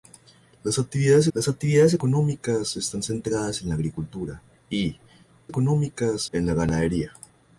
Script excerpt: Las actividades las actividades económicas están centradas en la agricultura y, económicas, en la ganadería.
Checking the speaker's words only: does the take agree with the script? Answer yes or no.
yes